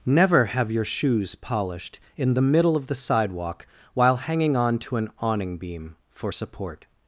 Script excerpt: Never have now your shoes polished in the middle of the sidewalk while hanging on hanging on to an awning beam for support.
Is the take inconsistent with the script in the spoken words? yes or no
yes